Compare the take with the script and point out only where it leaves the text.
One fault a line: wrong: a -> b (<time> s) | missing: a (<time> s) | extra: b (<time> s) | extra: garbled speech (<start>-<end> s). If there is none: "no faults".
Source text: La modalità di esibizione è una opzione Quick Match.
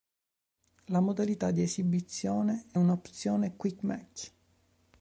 no faults